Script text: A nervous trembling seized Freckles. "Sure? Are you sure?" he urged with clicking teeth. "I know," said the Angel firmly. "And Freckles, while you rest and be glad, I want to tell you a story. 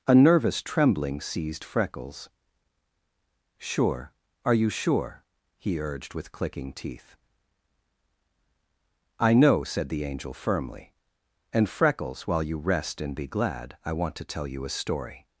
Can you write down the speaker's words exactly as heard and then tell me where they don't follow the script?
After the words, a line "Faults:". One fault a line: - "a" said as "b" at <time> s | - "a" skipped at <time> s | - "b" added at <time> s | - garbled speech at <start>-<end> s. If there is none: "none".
A nervous trembling seized Freckles. "Sure? Are you sure?" he urged with clicking teeth. "I know," said the Angel firmly. "And Freckles, while you rest and be glad, I want to tell you a story.
Faults:
none